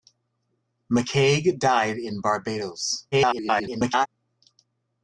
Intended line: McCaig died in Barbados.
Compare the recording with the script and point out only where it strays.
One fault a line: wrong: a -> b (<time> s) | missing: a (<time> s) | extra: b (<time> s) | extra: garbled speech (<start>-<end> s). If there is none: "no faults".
extra: garbled speech (3.1-4.1 s)